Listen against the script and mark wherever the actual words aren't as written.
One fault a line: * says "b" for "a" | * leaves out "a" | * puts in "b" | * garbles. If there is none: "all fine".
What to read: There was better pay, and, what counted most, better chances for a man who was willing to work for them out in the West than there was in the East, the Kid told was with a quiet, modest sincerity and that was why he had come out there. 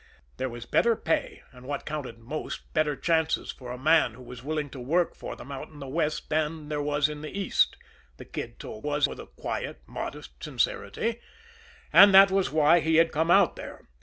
all fine